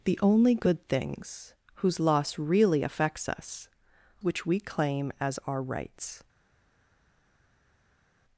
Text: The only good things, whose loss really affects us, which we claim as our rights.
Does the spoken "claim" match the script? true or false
true